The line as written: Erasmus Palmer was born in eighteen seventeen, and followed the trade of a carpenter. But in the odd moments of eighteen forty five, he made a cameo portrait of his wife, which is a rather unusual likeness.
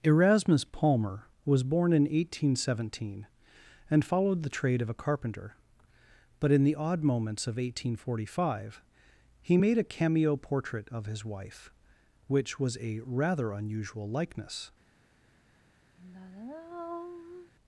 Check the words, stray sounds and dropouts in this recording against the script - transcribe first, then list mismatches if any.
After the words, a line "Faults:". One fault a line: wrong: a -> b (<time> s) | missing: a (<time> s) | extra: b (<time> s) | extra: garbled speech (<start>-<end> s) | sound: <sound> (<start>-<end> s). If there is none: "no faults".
Erasmus Palmer was born in eighteen seventeen, and followed the trade of a carpenter. But in the odd moments of eighteen forty five, he made a cameo portrait of his wife, which was a rather unusual likeness.
Faults:
wrong: is -> was (12.6 s)
sound: sigh (16.0-17.5 s)